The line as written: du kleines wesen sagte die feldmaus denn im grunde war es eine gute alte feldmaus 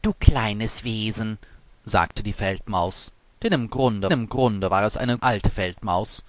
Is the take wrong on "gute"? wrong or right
wrong